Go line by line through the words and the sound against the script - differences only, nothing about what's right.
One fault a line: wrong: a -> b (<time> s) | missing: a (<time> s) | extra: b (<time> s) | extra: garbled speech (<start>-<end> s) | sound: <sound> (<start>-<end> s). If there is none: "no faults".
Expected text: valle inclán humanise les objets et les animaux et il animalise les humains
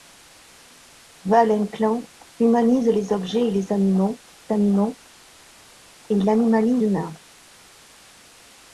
extra: animaux (4.5 s)
missing: les (6.8 s)